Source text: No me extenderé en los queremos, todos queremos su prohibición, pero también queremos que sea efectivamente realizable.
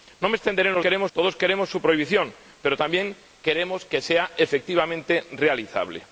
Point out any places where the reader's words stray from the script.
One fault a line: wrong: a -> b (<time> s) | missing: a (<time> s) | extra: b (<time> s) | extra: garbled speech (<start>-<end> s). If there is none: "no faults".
no faults